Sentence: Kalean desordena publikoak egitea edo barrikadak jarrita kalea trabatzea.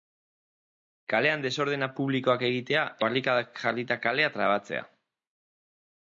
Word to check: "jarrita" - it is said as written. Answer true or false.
true